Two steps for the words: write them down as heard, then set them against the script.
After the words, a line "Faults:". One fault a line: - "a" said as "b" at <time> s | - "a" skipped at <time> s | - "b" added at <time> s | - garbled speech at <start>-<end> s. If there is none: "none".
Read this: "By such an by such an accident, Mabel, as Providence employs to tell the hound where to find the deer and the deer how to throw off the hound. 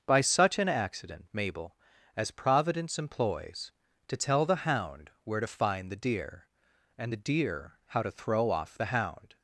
"By such an accident, Mabel, as Providence employs to tell the hound where to find the deer and the deer how to throw off the hound.
Faults:
- "by such an" skipped at 0.7 s